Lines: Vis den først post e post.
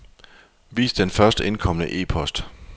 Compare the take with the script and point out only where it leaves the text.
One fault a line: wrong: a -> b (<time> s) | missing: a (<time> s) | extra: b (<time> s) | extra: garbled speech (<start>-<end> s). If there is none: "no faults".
wrong: post -> indkomne (1.4 s)